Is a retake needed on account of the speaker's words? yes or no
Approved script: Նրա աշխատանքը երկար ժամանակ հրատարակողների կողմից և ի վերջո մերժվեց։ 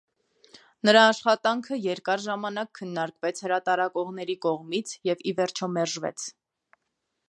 yes